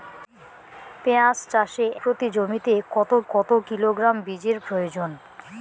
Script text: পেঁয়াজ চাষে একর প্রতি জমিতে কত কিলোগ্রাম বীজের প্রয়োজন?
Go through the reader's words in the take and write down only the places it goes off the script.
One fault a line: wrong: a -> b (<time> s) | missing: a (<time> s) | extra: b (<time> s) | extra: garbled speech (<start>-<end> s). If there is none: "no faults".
missing: একর (1.9 s)
extra: কত (3.3 s)